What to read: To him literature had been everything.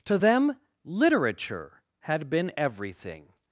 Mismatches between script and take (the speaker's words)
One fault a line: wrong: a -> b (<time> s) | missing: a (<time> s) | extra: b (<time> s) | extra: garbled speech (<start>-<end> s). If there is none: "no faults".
wrong: him -> them (0.1 s)